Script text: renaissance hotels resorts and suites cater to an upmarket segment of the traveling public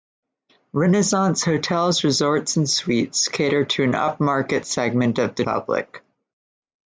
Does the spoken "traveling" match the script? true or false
false